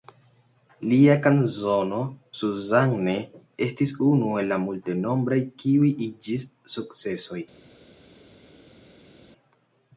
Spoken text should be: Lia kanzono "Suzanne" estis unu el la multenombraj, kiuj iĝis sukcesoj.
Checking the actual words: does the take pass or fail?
pass